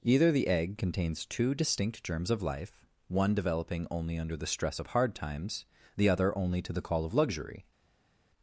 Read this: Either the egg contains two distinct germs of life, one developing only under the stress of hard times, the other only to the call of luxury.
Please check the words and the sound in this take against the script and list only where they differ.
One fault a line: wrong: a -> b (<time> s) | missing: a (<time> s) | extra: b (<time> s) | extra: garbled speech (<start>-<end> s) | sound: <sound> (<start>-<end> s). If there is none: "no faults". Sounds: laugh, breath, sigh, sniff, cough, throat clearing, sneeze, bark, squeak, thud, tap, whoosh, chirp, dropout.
no faults